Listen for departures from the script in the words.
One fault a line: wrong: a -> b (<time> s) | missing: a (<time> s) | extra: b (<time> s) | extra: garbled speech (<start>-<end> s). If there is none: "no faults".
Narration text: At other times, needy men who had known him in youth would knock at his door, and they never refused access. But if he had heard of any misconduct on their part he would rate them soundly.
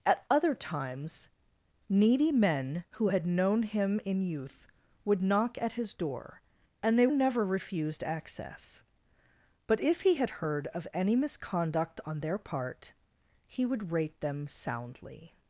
no faults